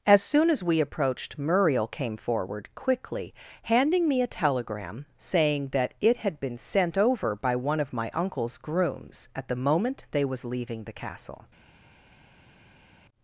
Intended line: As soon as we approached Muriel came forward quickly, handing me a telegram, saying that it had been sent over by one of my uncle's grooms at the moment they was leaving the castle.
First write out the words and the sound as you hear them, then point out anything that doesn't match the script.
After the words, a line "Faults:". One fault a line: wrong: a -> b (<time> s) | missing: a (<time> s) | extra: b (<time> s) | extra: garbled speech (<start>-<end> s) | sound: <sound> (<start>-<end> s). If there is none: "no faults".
As soon as we approached Muriel came forward quickly, handing me a telegram, saying that it had been sent over by one of my uncle's grooms at the moment they was leaving the castle.
Faults:
no faults